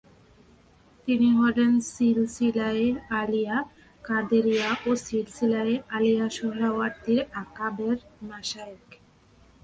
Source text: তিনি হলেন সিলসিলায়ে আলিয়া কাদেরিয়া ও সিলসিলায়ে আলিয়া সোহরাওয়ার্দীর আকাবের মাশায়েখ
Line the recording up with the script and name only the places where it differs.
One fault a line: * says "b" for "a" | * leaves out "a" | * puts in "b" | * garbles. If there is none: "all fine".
all fine